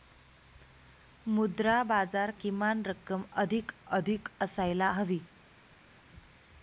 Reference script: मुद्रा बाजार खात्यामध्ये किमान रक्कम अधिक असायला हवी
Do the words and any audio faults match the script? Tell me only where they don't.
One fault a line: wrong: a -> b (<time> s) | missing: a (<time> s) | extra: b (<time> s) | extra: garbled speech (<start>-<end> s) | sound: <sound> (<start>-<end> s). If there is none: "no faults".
missing: खात्यामध्ये (2.3 s)
extra: अधिक (3.9 s)